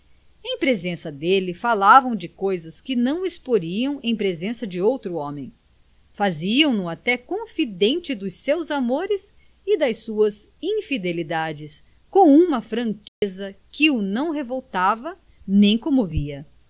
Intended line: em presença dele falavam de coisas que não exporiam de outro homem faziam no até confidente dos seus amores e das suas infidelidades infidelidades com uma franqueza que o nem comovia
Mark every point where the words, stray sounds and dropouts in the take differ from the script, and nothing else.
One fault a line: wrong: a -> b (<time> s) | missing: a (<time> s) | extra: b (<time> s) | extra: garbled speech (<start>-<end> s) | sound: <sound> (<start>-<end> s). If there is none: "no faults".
extra: em presença (4.0 s)
missing: infidelidades (11.8 s)
sound: dropout (13.1-13.2 s)
extra: não revoltava (14.0 s)